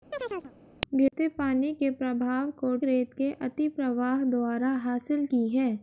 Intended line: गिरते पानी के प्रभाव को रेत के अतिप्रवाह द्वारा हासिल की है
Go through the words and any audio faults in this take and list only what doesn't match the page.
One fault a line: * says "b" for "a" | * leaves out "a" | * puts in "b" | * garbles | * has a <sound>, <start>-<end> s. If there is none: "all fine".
* has a chirp, 0.1-0.5 s